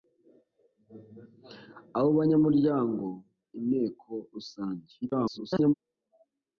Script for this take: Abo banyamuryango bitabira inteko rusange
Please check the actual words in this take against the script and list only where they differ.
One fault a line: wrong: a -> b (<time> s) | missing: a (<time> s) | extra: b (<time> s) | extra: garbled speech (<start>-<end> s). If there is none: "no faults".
missing: bitabira (3.0 s)
extra: garbled speech (5.0-5.7 s)